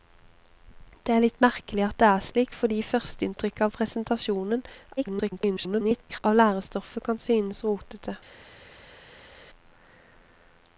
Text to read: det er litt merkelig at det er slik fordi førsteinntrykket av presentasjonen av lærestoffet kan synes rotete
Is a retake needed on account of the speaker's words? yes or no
yes